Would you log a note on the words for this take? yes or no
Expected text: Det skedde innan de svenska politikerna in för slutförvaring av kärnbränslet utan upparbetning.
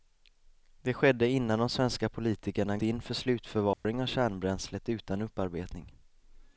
no